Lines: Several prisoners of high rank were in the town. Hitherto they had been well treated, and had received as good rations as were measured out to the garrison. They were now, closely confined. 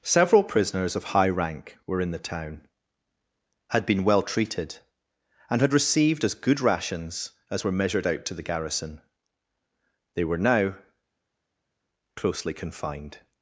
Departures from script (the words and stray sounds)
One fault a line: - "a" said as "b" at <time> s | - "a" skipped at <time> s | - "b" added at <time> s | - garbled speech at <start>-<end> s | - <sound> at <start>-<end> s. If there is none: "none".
- "Hitherto they" skipped at 2.6 s